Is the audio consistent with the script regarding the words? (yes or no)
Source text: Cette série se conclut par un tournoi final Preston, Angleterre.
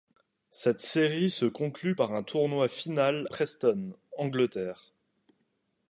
yes